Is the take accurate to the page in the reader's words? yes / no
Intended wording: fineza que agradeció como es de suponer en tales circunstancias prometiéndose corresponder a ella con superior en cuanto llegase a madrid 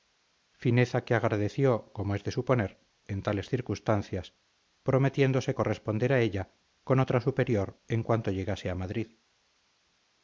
no